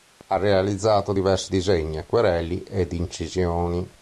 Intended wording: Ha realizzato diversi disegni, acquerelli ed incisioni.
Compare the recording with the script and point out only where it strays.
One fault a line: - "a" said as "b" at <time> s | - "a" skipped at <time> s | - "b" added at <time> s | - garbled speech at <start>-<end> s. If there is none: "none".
none